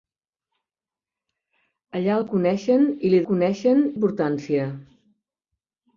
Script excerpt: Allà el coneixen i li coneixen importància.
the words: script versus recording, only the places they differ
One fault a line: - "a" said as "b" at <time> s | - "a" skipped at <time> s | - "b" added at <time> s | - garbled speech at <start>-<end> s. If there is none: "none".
none